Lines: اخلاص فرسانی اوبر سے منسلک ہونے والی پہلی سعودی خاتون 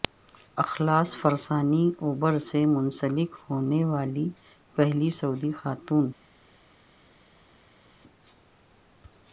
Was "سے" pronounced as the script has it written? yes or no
yes